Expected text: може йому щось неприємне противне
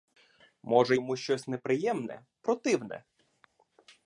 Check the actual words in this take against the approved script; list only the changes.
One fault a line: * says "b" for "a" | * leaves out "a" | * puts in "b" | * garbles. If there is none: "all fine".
all fine